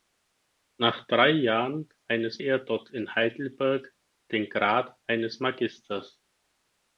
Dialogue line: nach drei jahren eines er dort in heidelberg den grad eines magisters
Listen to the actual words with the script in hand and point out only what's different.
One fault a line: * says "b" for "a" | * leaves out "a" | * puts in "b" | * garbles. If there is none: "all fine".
all fine